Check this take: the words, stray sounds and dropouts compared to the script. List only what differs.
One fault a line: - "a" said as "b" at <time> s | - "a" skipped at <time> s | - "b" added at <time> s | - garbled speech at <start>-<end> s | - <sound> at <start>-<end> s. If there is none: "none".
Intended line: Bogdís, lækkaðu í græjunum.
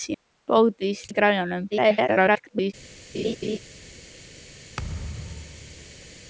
- "lækkaðu" skipped at 1.0 s
- garbled speech at 1.7-2.7 s
- laugh at 3.1-3.6 s
- thud at 4.8-6.2 s